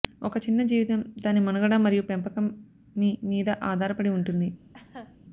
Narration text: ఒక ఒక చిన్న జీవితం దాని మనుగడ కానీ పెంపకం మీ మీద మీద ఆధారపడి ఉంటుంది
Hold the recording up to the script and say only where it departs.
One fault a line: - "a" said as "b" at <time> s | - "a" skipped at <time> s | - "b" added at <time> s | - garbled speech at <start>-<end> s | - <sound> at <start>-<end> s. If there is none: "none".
- "ఒక" skipped at 0.4 s
- "కానీ" said as "మరియు" at 1.8 s
- "మీద" skipped at 3.5 s
- laugh at 4.7-5.2 s